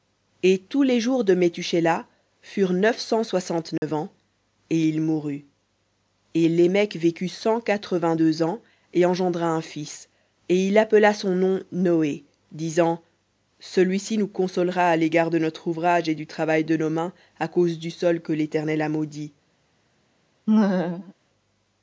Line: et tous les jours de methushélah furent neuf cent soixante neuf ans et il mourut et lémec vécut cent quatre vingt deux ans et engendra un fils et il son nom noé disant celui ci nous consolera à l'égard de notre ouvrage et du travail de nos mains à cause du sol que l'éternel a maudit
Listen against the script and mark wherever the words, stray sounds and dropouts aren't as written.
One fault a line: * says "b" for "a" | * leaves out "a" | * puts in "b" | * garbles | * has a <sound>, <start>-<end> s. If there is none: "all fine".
* has a dropout, 3.8-3.8 s
* puts in "appela"
* has a laugh, 20.5-21.1 s